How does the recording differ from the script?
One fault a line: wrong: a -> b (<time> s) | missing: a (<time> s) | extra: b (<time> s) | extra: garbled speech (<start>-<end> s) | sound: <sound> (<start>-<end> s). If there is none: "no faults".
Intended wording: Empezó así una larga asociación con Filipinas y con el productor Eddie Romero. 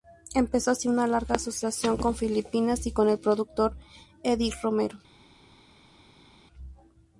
no faults